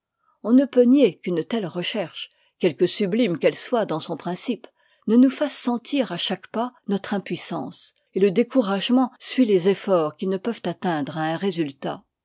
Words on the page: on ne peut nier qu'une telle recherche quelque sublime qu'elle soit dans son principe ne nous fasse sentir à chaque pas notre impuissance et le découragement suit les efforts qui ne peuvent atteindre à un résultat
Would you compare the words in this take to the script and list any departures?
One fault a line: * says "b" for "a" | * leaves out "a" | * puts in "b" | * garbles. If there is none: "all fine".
all fine